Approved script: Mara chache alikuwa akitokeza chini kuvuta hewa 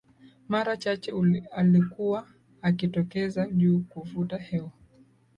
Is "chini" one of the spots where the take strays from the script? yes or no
yes